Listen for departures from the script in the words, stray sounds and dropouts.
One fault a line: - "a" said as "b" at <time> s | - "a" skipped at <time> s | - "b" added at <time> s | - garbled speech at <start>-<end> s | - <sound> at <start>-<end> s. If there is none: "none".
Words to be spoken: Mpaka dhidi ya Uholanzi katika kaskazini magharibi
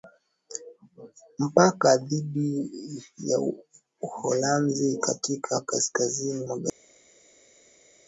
none